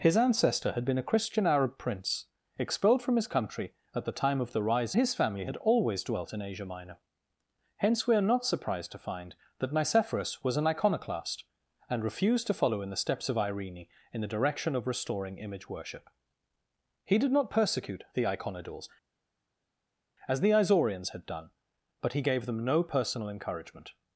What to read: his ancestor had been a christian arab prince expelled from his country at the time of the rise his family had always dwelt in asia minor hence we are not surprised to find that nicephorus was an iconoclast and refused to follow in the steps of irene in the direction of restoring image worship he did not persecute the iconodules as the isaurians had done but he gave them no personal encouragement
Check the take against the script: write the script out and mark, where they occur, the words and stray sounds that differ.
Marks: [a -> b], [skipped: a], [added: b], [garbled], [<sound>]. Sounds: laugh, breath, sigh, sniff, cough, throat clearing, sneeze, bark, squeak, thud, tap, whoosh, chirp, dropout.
his ancestor had been a christian arab prince expelled from his country at the time of the rise his family had always dwelt in asia minor hence we are not surprised to find that nicephorus was an iconoclast and refused to follow in the steps of irene in the direction of restoring image worship he did not persecute the iconodules as the isaurians had done but he gave them no personal encouragement